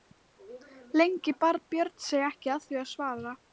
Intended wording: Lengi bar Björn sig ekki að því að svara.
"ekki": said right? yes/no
yes